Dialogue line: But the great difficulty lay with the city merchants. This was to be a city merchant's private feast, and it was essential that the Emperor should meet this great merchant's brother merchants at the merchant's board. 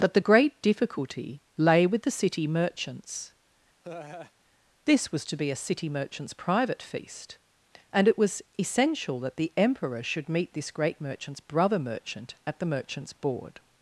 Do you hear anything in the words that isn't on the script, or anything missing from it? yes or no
yes